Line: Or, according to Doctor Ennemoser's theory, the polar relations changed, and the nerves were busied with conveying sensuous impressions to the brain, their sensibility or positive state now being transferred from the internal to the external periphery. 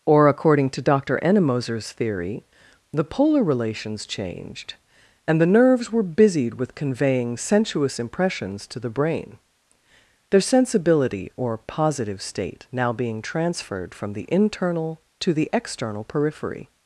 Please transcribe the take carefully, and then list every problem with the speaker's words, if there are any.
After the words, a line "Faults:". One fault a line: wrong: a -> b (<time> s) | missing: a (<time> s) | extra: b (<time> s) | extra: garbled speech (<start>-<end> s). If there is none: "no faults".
Or, according to Doctor Ennemoser's theory, the polar relations changed, and the nerves were busied with conveying sensuous impressions to the brain, their sensibility or positive state now being transferred from the internal to the external periphery.
Faults:
no faults